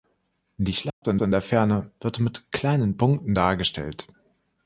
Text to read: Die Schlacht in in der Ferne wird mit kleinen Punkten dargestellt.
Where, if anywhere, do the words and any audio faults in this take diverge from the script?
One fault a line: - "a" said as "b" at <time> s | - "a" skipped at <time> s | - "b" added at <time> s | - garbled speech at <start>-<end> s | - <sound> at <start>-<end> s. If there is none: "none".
- dropout at 0.9-1.0 s